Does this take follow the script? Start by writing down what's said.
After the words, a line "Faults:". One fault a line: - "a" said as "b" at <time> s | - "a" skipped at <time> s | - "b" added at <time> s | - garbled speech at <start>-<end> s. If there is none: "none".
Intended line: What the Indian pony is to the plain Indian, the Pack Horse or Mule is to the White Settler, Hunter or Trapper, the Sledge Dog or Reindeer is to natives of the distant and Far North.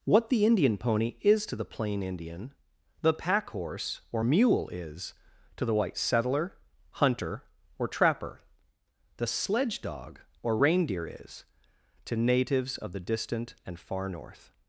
What the Indian pony is to the plain Indian, the Pack Horse or Mule is to the White Settler, Hunter or Trapper, the Sledge Dog or Reindeer is to natives of the distant and Far North.
Faults:
none